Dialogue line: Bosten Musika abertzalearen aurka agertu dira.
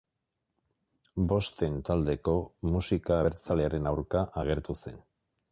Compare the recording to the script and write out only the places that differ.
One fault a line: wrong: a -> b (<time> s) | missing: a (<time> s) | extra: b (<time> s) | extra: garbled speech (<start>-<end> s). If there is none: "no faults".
extra: Taldeko (1.9 s)
wrong: dira -> zen (4.8 s)